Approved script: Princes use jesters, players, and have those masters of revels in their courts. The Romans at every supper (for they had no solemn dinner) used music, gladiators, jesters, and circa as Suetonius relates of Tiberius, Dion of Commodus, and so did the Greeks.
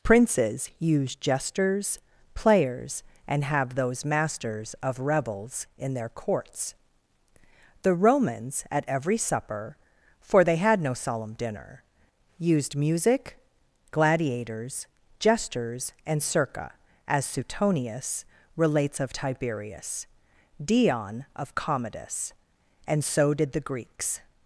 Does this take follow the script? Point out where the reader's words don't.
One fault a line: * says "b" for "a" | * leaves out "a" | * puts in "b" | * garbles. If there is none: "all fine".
all fine